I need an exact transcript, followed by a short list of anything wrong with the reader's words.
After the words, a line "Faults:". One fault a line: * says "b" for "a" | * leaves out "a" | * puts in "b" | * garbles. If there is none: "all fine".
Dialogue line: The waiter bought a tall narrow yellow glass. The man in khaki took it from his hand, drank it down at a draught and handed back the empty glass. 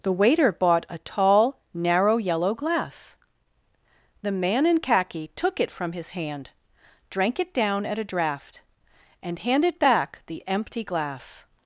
The waiter bought a tall narrow yellow glass. The man in khaki took it from his hand, drank it down at a draught and handed back the empty glass.
Faults:
all fine